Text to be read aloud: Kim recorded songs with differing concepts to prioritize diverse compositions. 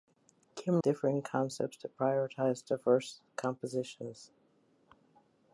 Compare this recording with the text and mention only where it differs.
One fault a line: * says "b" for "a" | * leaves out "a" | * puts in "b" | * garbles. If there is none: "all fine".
* leaves out "recorded songs with"